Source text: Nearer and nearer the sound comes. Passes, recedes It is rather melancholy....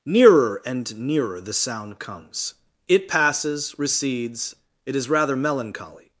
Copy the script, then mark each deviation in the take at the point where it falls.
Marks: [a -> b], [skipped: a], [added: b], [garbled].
Nearer and nearer the sound comes. [added: It] Passes, recedes It is rather melancholy....